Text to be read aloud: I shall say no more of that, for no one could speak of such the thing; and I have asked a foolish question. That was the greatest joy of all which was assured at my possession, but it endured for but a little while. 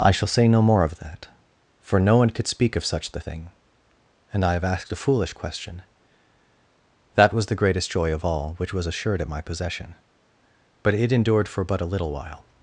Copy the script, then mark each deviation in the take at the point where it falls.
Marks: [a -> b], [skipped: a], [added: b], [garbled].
I shall say no more of that, for no one could speak of such the thing; and I have asked a foolish question. That was the greatest joy of all which was assured at my possession, but it endured for but a little while.